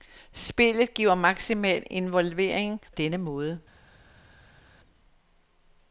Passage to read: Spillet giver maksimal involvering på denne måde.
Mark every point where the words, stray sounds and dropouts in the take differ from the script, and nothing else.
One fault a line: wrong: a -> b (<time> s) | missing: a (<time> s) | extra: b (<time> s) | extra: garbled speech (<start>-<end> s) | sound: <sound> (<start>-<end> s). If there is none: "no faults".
missing: på (2.8 s)